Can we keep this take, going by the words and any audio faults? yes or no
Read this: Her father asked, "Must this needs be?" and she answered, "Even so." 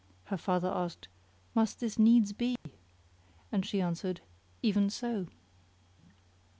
no